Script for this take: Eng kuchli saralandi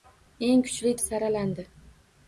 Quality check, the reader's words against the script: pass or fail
pass